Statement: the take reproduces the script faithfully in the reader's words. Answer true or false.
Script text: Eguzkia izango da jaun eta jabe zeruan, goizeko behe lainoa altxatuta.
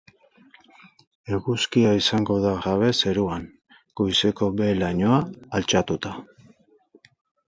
false